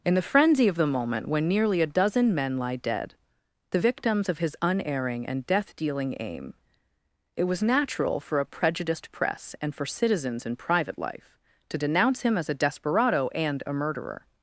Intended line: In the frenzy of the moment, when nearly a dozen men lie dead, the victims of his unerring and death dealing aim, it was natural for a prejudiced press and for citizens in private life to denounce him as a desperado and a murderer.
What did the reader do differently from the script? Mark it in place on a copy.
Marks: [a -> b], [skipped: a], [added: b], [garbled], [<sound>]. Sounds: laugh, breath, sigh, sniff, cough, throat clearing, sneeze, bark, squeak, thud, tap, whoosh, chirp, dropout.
In the frenzy of the moment, when nearly a dozen men lie dead, the victims of his unerring and death dealing aim, it was natural for a prejudiced press and for citizens in private life to denounce him as a desperado and a murderer.